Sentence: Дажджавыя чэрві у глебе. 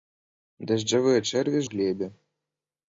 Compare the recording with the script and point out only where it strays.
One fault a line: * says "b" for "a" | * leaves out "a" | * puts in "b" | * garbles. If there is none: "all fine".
all fine